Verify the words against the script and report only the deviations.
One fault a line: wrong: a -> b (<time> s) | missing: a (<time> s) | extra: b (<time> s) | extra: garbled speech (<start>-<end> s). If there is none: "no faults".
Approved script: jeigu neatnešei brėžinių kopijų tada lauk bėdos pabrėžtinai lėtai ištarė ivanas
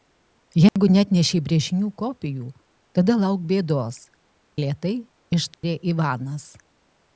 missing: pabrėžtinai (4.0 s)